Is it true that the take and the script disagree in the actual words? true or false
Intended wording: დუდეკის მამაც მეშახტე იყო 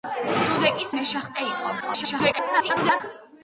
true